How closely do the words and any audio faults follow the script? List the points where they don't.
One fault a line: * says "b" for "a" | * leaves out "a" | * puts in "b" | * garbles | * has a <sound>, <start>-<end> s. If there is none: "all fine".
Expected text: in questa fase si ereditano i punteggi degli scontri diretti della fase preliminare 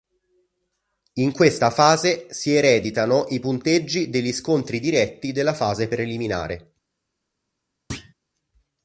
* has a thud, 7.9-8.1 s